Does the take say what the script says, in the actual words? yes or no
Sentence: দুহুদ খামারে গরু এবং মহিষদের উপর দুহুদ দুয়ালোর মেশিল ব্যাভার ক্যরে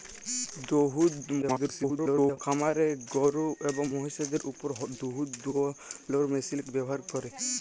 no